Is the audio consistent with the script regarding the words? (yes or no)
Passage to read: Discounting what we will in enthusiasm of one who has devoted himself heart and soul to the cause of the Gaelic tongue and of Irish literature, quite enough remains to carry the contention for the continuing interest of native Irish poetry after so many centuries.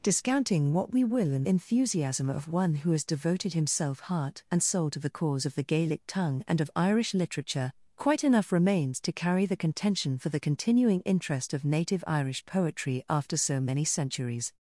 yes